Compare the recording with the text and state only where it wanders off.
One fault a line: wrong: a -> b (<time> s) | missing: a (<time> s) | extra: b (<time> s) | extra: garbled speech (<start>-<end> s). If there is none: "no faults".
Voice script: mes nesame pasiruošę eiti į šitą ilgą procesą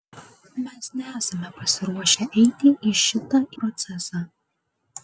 missing: ilgą (3.4 s)